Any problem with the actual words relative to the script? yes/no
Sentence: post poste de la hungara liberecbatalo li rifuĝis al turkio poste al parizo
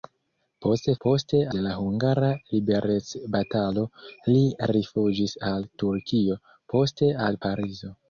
no